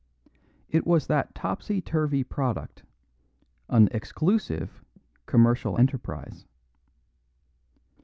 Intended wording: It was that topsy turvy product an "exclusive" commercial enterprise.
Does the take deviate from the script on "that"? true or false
false